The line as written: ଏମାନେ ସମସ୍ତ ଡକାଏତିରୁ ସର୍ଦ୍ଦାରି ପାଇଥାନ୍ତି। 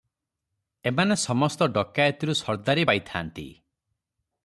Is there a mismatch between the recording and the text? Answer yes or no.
no